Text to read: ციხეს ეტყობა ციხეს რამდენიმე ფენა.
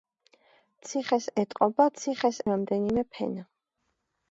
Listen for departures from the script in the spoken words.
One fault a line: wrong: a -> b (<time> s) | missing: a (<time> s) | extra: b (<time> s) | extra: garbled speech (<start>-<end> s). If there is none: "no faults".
no faults